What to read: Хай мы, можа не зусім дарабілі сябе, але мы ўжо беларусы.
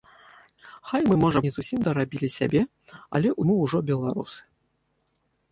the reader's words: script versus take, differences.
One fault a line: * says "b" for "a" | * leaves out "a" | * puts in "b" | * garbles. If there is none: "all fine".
all fine